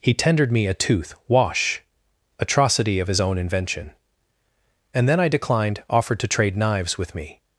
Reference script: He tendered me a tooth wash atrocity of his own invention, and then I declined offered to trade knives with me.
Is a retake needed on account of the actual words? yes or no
no